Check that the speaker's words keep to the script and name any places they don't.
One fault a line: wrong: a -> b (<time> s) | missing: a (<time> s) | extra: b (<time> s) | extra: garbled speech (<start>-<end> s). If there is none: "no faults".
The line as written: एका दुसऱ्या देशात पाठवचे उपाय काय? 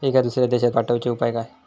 no faults